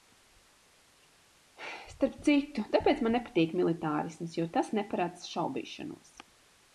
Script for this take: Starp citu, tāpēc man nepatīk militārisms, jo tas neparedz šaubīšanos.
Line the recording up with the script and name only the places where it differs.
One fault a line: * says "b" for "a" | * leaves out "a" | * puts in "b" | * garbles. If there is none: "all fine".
all fine